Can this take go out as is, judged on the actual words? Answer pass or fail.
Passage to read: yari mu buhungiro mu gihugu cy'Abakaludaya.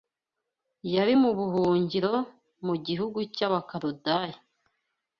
pass